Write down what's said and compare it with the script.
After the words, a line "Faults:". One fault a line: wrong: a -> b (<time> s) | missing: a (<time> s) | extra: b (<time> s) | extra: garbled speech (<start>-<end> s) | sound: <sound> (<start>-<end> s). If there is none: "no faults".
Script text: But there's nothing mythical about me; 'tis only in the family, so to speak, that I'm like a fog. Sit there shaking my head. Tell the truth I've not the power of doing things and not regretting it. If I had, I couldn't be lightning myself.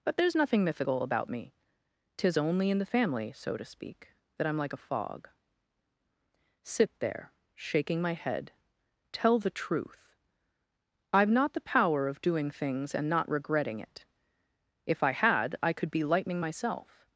But there's nothing mythical about me; 'tis only in the family, so to speak, that I'm like a fog. Sit there shaking my head. Tell the truth I've not the power of doing things and not regretting it. If I had, I could be lightning myself.
Faults:
wrong: couldn't -> could (15.7 s)